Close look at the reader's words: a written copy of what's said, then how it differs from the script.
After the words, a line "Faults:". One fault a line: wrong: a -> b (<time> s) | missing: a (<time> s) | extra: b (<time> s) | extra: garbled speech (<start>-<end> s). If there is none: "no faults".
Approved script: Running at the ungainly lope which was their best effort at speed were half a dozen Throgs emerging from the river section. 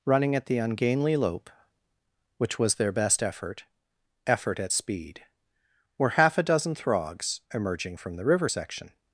Running at the ungainly lope which was their best effort effort at speed were half a dozen Throgs emerging from the river section.
Faults:
extra: effort (4.2 s)